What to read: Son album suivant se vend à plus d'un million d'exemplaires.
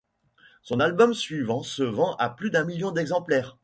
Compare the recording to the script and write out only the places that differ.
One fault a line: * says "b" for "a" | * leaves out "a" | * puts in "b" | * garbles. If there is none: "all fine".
all fine